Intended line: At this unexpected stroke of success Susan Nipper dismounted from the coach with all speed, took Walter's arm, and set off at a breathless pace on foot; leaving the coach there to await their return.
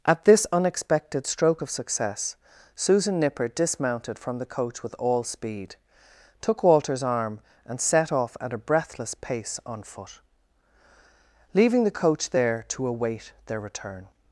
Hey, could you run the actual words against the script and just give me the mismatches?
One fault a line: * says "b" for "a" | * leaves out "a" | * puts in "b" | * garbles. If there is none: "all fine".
all fine